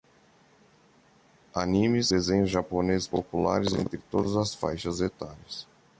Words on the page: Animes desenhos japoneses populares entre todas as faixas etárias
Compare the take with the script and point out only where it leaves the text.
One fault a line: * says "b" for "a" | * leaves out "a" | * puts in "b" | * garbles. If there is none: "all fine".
all fine